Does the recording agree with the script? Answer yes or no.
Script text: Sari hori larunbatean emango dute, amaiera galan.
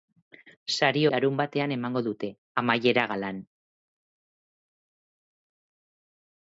no